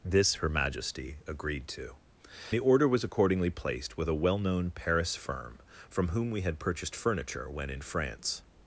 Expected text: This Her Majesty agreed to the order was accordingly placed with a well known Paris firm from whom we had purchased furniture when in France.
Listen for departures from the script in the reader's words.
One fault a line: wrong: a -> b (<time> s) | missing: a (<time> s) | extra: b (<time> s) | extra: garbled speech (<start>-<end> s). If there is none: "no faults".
no faults